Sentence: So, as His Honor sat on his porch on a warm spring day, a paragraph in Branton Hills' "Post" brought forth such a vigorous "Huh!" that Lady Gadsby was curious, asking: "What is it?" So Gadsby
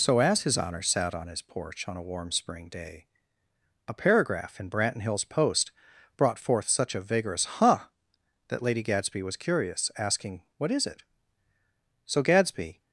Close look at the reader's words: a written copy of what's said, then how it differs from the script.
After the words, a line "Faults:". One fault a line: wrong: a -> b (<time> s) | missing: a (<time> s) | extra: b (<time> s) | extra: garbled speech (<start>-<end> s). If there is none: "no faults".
So, as His Honor sat on his porch on a warm spring day, a paragraph in Branton Hills' "Post" brought forth such a vigorous "Huh!" that Lady Gadsby was curious, asking: "What is it?" So Gadsby
Faults:
no faults